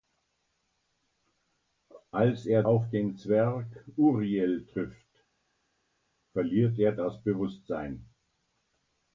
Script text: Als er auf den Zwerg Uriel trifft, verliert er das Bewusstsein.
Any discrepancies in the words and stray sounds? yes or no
no